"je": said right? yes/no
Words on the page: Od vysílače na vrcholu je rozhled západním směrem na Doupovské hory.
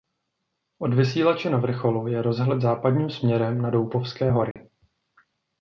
yes